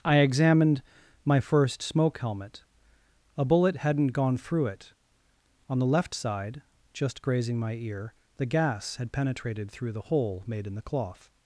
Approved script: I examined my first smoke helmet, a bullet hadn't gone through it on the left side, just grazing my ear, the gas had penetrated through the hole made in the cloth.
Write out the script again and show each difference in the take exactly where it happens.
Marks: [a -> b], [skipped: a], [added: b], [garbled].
I examined my first smoke helmet, a bullet hadn't gone through it on the left side, just grazing my ear, the gas had penetrated through the hole made in the cloth.